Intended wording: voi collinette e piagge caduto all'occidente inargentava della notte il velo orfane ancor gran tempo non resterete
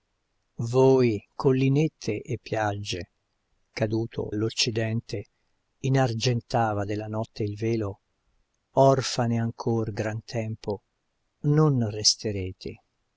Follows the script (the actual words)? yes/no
yes